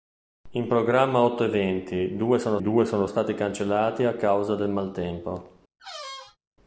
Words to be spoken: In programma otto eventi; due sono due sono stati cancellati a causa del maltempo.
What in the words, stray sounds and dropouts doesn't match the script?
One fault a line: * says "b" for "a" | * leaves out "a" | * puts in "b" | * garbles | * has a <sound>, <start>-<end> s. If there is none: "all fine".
* has a squeak, 5.8-6.4 s